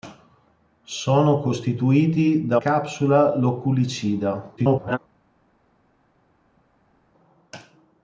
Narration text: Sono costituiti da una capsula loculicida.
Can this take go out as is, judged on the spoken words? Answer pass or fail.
fail